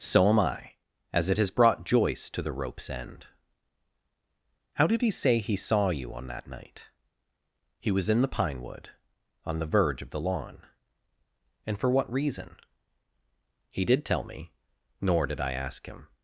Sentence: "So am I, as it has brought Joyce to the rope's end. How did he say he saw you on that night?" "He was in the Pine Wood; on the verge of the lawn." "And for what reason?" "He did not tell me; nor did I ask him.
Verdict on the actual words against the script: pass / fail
fail